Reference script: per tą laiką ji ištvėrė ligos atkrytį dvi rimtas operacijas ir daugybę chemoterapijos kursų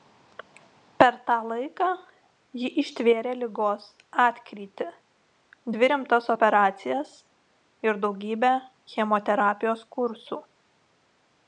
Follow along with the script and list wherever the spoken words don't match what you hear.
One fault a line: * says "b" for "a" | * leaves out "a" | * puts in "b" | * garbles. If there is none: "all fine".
all fine